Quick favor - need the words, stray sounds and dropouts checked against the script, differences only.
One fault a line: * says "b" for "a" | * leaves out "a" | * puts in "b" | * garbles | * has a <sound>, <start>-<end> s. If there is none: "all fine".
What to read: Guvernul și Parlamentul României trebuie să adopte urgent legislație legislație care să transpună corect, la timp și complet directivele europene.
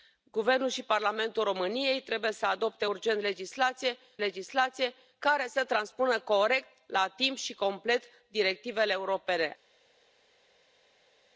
all fine